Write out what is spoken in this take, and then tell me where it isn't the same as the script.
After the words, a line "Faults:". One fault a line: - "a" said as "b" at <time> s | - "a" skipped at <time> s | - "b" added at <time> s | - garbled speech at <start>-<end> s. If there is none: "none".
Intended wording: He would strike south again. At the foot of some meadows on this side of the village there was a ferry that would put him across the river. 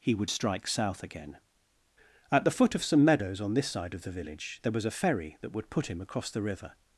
He would strike south again. At the foot of some meadows on this side of the village there was a ferry that would put him across the river.
Faults:
none